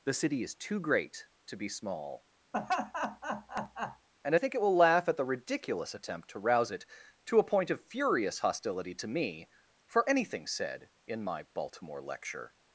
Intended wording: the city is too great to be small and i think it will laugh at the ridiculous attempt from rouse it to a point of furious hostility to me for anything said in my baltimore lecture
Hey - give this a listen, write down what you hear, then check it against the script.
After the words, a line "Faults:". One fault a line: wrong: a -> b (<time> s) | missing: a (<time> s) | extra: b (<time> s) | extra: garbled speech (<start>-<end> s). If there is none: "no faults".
the city is too great to be small and i think it will laugh at the ridiculous attempt to rouse it to a point of furious hostility to me for anything said in my baltimore lecture
Faults:
wrong: from -> to (6.3 s)